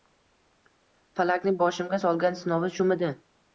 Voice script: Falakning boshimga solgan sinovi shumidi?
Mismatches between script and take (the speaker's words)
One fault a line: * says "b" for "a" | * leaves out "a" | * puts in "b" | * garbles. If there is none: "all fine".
all fine